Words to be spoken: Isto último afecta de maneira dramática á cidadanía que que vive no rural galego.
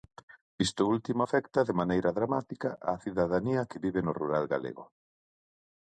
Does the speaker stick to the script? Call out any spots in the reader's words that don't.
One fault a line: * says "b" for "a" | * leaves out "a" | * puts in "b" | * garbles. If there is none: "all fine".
* leaves out "que"